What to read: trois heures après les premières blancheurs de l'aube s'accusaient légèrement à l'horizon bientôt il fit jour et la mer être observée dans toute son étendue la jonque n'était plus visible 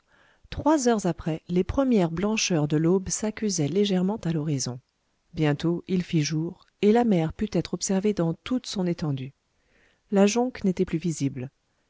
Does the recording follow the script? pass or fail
fail